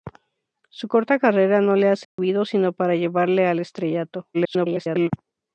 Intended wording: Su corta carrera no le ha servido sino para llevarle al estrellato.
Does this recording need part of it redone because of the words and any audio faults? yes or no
yes